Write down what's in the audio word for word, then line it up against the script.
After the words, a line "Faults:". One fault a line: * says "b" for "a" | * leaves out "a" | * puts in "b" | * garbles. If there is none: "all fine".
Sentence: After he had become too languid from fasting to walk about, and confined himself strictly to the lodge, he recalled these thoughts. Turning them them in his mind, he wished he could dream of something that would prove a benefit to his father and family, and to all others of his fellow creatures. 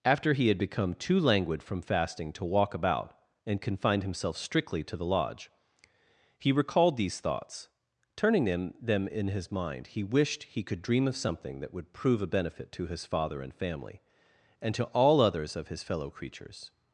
After he had become too languid from fasting to walk about, and confined himself strictly to the lodge, he recalled these thoughts. Turning them them in his mind, he wished he could dream of something that would prove a benefit to his father and family, and to all others of his fellow creatures.
Faults:
all fine